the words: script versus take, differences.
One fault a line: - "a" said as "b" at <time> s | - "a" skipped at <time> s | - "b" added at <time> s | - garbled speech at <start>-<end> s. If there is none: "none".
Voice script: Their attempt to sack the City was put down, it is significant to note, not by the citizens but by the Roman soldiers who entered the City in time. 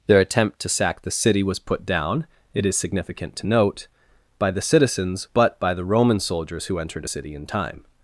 - "not" skipped at 3.9 s
- "the" said as "a" at 7.1 s